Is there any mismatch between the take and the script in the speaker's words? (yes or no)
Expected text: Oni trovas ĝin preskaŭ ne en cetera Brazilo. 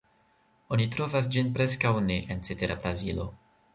no